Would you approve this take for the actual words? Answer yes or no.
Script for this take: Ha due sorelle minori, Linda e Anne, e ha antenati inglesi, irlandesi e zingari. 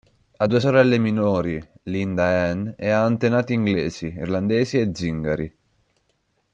yes